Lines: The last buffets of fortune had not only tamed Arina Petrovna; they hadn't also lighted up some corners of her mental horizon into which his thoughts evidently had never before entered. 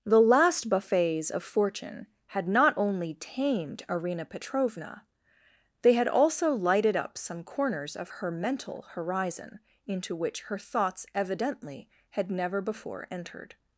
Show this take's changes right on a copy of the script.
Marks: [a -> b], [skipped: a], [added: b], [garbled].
The last buffets of fortune had not only tamed Arina Petrovna; they [hadn't -> had] also lighted up some corners of her mental horizon into which [his -> her] thoughts evidently had never before entered.